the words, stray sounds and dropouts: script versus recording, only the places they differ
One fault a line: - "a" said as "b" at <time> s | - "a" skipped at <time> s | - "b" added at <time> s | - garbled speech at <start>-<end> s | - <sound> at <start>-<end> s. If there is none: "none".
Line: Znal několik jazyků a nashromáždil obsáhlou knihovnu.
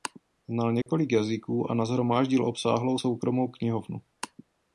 - dropout at 0.8-0.9 s
- "soukromou" added at 3.0 s